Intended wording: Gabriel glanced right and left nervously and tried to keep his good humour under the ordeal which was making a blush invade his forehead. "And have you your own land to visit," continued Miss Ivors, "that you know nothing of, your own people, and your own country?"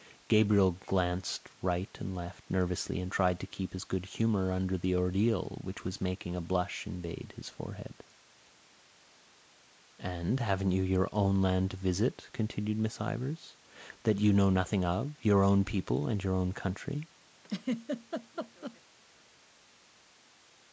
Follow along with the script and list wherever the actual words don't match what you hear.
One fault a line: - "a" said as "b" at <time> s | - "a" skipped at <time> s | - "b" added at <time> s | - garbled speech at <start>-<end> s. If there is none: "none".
- "have" said as "haven't" at 10.4 s